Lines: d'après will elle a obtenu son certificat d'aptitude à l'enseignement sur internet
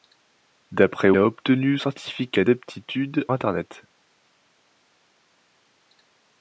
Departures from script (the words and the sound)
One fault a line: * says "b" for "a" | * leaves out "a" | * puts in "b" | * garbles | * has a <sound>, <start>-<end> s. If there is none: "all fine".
* leaves out "will elle"
* leaves out "son"
* leaves out "à l'enseignement sur"